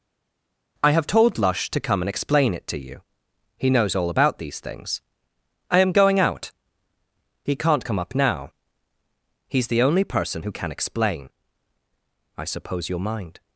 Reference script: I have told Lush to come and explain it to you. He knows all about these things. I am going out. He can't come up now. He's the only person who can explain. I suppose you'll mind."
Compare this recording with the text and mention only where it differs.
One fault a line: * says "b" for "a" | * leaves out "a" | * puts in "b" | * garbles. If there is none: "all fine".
all fine